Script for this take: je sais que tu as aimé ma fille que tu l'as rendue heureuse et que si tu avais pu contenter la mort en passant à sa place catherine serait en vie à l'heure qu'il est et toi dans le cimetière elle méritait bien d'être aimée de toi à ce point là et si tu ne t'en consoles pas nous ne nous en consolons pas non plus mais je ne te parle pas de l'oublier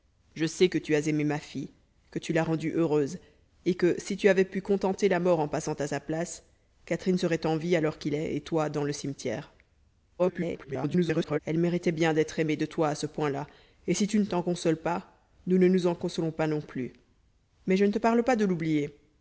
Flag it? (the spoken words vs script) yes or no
yes